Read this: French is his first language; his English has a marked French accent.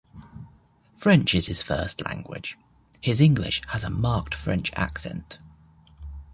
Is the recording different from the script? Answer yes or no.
no